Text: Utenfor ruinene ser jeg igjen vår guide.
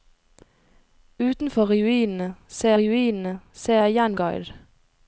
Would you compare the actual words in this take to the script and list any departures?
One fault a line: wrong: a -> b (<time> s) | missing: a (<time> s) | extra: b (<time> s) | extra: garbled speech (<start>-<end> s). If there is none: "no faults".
extra: ruinene ser (2.8 s)
missing: vår (4.2 s)